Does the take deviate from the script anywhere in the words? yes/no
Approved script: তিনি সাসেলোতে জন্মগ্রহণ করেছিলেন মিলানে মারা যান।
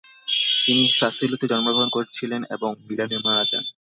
yes